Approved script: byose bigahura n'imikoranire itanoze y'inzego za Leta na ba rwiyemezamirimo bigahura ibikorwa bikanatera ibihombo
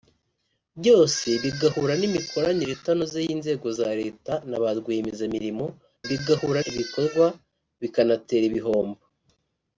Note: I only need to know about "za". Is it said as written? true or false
true